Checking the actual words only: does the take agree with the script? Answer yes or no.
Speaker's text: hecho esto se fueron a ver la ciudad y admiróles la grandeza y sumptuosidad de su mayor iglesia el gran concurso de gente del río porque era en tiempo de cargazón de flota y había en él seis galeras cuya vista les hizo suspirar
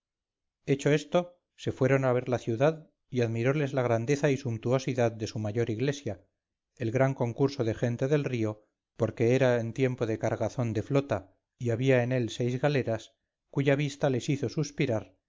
yes